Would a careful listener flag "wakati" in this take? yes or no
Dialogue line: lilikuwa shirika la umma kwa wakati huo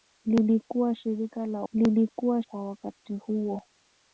no